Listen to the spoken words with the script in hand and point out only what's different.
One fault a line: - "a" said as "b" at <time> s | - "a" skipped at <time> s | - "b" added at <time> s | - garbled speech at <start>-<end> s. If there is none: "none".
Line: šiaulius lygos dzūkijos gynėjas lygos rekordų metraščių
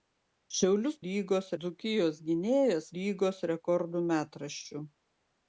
none